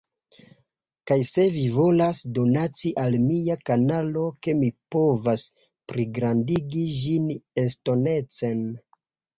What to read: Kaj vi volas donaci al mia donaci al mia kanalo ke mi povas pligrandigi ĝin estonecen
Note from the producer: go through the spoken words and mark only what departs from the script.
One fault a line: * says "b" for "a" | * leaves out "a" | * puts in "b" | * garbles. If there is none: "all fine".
* puts in "se"
* leaves out "donaci al mia"